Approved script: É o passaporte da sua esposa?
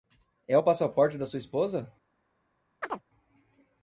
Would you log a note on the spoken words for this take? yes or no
no